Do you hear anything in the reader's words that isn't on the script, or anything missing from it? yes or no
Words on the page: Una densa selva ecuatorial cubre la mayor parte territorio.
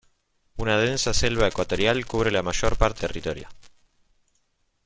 no